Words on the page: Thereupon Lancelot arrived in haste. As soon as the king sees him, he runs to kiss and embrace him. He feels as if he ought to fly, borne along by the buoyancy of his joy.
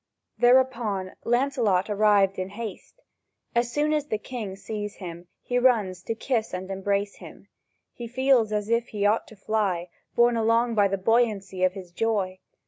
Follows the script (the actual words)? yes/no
yes